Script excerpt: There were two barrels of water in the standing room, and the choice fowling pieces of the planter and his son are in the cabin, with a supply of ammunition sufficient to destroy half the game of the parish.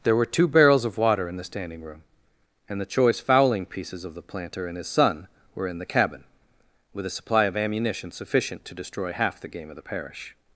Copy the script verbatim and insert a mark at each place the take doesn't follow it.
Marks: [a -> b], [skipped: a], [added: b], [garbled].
There were two barrels of water in the standing room, and the choice fowling pieces of the planter and his son [are -> were] in the cabin, with a supply of ammunition sufficient to destroy half the game of the parish.